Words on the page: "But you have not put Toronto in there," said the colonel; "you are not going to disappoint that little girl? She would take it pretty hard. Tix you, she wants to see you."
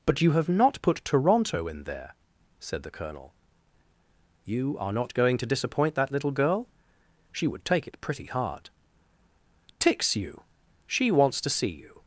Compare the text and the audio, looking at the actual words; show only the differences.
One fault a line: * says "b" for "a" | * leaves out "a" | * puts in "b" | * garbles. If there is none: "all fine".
all fine